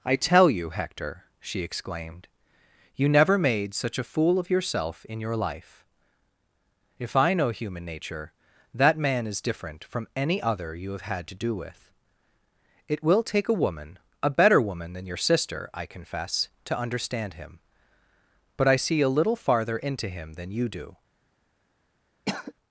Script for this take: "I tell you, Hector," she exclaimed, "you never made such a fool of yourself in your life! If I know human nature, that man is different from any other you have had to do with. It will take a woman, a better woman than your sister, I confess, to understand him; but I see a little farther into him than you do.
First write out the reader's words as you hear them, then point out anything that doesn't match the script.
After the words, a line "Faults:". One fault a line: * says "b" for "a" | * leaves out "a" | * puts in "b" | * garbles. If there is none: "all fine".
"I tell you, Hector," she exclaimed, "you never made such a fool of yourself in your life! If I know human nature, that man is different from any other you have had to do with. It will take a woman, a better woman than your sister, I confess, to understand him; but I see a little farther into him than you do.
Faults:
all fine